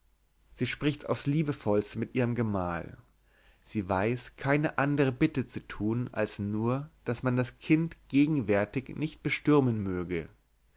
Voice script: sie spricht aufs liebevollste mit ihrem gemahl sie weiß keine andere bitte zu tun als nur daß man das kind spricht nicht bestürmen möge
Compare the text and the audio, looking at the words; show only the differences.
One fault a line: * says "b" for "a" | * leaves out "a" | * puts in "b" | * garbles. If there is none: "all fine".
* says "gegenwärtig" for "spricht"